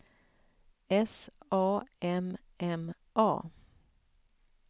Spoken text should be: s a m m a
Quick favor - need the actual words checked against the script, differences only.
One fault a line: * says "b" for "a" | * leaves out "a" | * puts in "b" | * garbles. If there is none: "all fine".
all fine